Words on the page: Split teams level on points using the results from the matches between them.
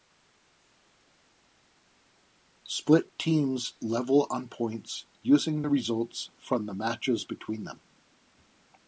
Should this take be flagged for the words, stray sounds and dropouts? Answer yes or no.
no